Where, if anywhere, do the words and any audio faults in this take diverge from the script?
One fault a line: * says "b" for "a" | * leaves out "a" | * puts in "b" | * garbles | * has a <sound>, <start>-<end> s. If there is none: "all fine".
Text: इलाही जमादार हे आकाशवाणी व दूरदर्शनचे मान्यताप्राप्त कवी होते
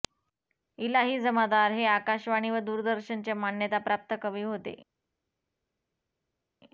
all fine